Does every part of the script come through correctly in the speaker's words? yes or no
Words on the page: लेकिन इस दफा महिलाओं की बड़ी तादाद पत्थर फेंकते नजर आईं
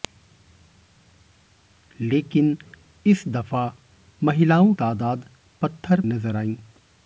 no